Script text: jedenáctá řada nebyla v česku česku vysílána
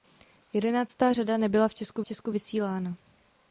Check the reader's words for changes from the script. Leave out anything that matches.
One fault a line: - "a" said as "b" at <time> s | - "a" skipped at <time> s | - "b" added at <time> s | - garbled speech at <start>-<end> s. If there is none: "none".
none